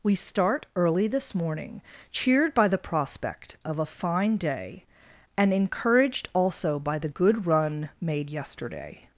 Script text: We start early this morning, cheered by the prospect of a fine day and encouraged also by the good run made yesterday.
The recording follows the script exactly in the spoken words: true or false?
true